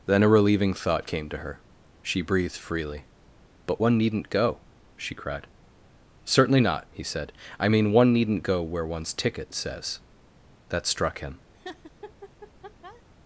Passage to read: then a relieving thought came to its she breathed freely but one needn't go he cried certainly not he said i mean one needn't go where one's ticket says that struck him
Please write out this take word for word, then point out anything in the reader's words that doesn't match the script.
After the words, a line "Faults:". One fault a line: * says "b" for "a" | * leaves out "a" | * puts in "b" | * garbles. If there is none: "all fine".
then a relieving thought came to her she breathed freely but one needn't go she cried certainly not he said i mean one needn't go where one's ticket says that struck him
Faults:
* says "her" for "its"
* says "she" for "he"